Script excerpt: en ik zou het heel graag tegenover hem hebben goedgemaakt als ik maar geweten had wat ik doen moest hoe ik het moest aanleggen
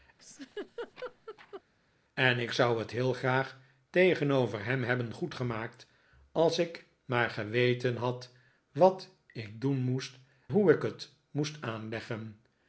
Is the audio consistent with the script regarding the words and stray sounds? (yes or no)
no